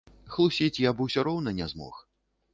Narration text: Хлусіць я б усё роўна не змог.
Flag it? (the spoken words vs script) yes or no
no